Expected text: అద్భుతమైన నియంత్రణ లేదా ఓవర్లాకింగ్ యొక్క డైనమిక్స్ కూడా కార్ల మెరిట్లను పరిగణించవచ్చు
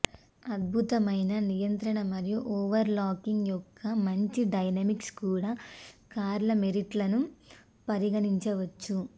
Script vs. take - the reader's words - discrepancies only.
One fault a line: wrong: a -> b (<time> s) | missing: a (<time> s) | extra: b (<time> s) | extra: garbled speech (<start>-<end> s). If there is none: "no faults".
wrong: లేదా -> మరియు (2.1 s)
extra: మంచి (4.1 s)